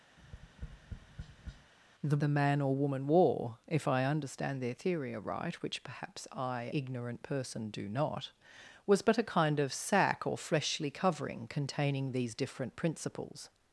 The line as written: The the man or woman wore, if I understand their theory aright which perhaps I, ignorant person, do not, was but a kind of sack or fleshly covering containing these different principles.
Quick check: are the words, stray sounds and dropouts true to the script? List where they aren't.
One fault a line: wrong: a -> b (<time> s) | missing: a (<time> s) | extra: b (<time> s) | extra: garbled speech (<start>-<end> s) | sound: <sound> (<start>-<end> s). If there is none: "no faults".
sound: tap (0.2-1.7 s)